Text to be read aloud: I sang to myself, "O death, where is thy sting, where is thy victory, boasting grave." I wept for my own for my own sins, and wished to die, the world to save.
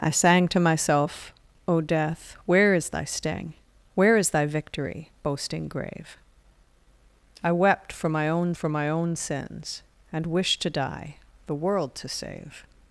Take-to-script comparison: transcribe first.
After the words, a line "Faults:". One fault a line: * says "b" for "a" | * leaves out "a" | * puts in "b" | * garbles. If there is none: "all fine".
I sang to myself, "O death, where is thy sting, where is thy victory, boasting grave." I wept for my own for my own sins, and wished to die, the world to save.
Faults:
all fine